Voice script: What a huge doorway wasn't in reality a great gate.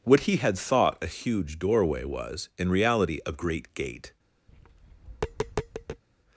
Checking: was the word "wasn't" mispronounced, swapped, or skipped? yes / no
yes